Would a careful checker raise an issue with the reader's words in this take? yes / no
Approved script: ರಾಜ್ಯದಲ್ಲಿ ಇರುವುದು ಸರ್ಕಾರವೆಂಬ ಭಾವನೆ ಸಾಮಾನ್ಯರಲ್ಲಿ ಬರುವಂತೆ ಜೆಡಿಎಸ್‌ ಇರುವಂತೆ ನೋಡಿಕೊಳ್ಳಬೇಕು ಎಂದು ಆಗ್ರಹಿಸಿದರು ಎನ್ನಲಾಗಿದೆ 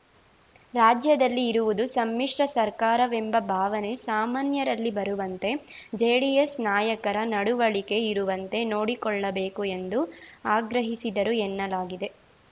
yes